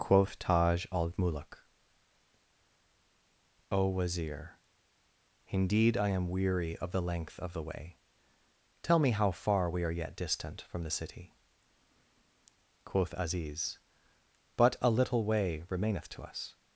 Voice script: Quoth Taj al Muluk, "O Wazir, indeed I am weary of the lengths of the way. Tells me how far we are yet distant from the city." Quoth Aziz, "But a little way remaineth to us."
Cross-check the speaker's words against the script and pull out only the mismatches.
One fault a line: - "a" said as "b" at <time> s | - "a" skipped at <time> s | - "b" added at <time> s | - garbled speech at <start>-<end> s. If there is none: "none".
- "lengths" said as "length" at 7.0 s
- "Tells" said as "Tell" at 8.8 s